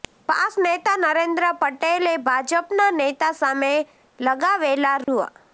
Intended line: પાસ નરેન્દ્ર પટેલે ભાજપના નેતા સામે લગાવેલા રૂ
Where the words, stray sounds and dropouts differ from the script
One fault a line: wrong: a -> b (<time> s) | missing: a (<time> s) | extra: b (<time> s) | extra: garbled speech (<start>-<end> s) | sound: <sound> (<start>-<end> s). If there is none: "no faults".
extra: નેતા (0.6 s)
sound: dropout (5.0-5.1 s)